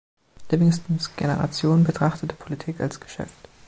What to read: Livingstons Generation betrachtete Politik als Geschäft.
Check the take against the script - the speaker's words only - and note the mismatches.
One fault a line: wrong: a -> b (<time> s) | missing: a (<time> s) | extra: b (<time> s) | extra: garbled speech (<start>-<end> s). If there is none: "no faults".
no faults